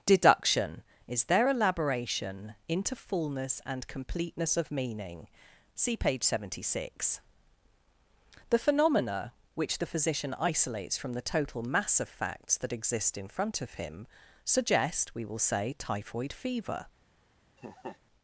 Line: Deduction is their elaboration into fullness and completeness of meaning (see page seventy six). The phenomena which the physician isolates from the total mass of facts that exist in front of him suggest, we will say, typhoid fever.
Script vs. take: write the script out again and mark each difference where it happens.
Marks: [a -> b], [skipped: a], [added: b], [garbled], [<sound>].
Deduction is their elaboration into fullness and completeness of meaning (see page seventy six). The phenomena which the physician isolates from the total mass of facts that exist in front of him suggest, we will say, typhoid fever. [laugh]